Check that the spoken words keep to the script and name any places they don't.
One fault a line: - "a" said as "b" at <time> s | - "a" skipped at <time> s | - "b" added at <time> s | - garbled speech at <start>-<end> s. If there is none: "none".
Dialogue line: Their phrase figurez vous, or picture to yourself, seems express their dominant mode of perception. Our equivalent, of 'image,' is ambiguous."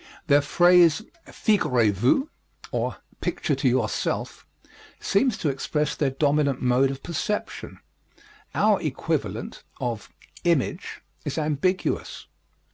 - "to" added at 5.4 s